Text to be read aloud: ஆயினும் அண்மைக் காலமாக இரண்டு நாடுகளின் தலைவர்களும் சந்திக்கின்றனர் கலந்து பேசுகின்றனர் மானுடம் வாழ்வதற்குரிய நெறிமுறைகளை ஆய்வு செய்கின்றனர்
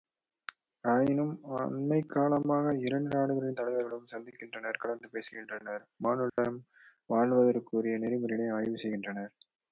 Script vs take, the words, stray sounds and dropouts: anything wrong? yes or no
yes